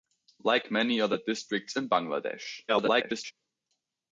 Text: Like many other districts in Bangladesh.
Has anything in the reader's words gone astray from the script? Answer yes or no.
yes